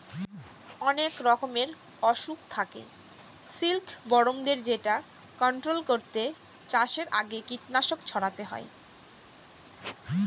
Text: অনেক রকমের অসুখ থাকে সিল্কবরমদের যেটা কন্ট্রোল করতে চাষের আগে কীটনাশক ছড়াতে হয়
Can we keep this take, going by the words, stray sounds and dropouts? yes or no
yes